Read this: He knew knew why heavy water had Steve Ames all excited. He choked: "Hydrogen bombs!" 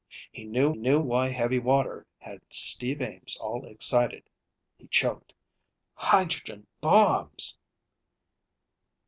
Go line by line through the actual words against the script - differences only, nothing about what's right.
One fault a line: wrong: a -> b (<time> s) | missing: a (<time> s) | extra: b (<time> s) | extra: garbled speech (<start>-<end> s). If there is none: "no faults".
no faults